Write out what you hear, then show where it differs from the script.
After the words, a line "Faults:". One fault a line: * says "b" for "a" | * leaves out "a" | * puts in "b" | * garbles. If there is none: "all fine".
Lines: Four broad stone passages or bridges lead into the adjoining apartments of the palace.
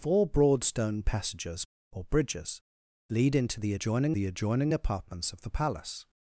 Four broad stone passages or bridges lead into the adjoining the adjoining apartments of the palace.
Faults:
* puts in "the adjoining"